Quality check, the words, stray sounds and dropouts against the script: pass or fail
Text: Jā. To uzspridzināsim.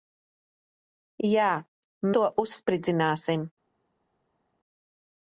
pass